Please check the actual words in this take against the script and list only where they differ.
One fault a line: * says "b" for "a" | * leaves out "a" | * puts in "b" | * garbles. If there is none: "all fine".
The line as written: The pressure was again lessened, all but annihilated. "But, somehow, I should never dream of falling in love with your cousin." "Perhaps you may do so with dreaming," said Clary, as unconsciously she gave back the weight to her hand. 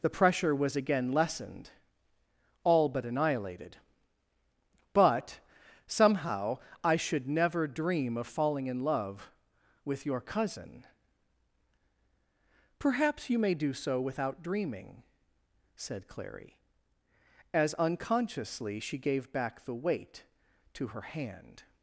* says "without" for "with"